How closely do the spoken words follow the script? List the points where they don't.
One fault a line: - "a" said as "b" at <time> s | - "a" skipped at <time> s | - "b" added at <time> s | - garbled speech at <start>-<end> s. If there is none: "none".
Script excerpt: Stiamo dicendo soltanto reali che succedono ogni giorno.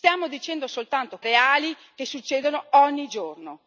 none